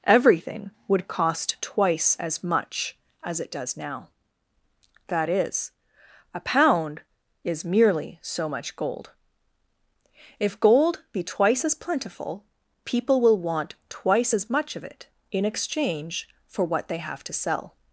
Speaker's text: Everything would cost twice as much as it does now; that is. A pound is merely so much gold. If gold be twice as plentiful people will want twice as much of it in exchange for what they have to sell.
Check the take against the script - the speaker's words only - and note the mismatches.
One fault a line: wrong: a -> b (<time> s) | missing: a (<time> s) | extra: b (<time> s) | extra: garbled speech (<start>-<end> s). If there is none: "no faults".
no faults